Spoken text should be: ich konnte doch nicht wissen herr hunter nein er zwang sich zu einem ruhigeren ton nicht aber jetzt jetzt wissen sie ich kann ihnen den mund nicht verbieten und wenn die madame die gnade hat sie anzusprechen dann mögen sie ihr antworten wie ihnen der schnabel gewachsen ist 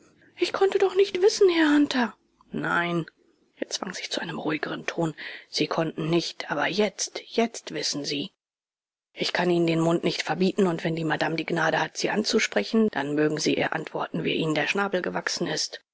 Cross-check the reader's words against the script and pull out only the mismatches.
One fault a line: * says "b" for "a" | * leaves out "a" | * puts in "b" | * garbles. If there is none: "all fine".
* puts in "sie konnten"